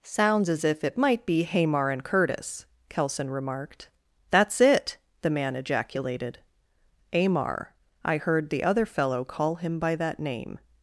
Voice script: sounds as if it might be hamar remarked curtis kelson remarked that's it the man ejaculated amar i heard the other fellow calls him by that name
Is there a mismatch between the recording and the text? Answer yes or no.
yes